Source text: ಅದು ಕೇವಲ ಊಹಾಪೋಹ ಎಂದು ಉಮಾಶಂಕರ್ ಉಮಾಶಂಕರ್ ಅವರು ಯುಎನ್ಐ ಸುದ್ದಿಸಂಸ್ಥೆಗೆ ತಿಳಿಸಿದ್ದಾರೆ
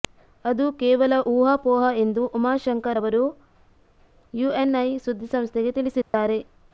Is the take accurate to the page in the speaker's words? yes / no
no